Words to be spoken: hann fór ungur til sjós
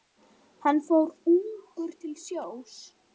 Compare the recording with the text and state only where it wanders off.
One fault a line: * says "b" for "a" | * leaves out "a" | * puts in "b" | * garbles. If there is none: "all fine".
all fine